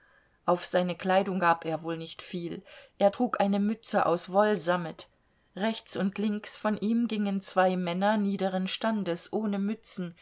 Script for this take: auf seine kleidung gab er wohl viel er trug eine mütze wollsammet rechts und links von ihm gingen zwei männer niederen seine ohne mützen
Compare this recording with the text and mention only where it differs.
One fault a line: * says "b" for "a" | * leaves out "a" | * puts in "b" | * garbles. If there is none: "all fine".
* puts in "nicht"
* puts in "aus"
* says "standes" for "seine"